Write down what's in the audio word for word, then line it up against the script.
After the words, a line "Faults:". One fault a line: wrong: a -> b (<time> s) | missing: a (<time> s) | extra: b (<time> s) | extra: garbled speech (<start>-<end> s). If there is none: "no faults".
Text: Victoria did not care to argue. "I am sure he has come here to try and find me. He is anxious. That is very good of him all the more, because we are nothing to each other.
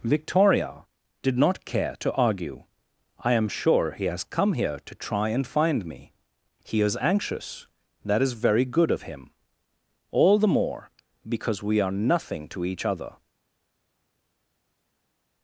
Victoria did not care to argue. "I am sure he has come here to try and find me. He is anxious. That is very good of him all the more, because we are nothing to each other.
Faults:
no faults